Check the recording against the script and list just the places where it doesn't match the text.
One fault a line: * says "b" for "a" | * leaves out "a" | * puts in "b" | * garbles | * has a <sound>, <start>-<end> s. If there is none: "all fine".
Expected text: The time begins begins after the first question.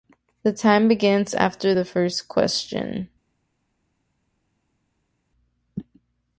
* leaves out "begins"